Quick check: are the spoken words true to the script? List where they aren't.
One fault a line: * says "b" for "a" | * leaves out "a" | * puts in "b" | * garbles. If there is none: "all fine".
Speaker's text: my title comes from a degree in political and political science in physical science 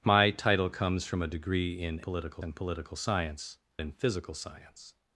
all fine